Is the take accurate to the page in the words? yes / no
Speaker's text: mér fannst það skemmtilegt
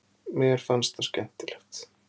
yes